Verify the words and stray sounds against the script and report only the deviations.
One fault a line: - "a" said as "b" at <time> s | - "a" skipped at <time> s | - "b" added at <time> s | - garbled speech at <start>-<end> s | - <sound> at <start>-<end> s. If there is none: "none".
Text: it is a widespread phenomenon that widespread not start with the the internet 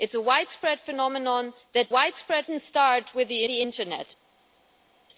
none